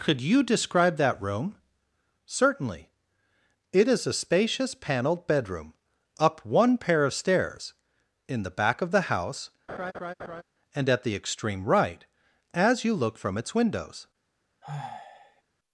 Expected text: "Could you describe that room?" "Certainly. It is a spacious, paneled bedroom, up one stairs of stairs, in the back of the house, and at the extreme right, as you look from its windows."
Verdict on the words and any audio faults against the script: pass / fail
fail